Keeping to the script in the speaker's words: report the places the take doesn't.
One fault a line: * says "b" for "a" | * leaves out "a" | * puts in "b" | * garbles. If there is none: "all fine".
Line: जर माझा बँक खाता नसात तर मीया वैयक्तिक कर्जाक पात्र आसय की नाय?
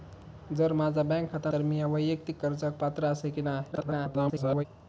* leaves out "नसात"
* garbles